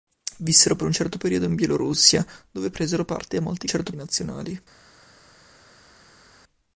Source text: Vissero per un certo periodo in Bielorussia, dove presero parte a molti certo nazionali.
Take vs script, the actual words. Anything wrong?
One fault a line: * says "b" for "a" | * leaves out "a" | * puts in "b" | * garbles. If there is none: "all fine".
all fine